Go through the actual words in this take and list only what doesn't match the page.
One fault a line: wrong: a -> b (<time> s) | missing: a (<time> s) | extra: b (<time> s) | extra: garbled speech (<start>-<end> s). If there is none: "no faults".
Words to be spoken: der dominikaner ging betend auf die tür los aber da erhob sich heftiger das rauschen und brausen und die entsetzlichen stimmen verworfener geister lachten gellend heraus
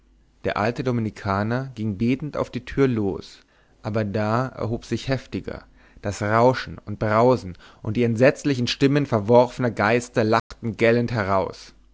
extra: alte (0.6 s)